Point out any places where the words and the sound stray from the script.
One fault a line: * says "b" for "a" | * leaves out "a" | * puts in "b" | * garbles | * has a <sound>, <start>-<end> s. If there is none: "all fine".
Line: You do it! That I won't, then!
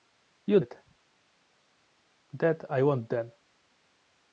* leaves out "do"